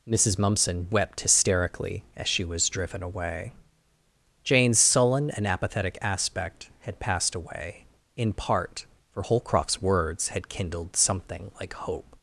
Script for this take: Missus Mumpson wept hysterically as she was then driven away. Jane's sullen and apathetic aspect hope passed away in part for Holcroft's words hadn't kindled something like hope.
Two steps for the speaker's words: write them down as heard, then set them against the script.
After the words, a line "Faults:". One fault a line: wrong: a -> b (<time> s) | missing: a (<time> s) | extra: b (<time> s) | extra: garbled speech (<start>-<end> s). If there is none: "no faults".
Missus Mumpson wept hysterically as she was driven away. Jane's sullen and apathetic aspect had passed away in part for Holcroft's words had kindled something like hope.
Faults:
missing: then (2.7 s)
wrong: hope -> had (6.8 s)
wrong: hadn't -> had (10.3 s)